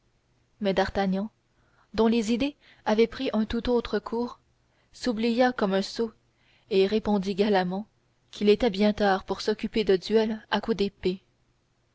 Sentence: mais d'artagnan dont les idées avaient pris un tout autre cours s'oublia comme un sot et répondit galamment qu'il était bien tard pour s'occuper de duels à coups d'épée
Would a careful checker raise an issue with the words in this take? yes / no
no